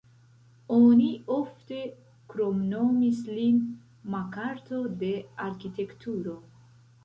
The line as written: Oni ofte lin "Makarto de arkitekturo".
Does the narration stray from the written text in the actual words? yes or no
yes